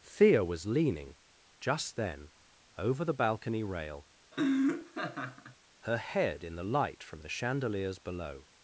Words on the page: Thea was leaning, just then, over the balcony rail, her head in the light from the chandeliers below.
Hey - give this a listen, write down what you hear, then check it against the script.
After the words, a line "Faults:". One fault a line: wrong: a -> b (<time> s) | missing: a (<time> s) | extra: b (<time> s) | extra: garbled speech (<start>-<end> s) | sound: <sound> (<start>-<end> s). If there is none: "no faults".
Thea was leaning, just then, over the balcony rail, her head in the light from the chandeliers below.
Faults:
sound: laugh (4.3-5.6 s)